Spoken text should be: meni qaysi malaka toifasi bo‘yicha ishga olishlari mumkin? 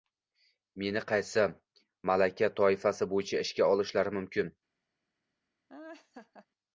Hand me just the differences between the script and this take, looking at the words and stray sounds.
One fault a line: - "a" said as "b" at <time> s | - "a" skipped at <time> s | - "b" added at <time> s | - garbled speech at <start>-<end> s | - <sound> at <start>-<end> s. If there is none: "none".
- laugh at 5.7-6.5 s